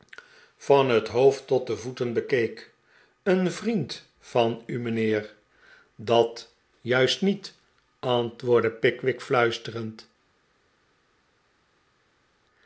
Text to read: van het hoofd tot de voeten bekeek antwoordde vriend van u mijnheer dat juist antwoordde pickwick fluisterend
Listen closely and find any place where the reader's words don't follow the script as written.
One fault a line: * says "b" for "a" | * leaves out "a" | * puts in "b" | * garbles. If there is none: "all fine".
* says "een" for "antwoordde"
* puts in "niet"